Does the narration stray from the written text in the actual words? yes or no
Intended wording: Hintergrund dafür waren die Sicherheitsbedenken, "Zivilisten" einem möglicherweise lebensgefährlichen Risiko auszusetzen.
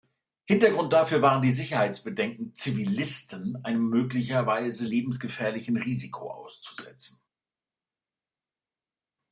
no